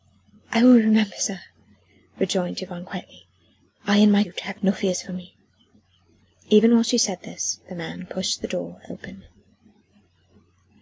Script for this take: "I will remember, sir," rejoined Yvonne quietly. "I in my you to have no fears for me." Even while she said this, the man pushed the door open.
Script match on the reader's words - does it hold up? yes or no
yes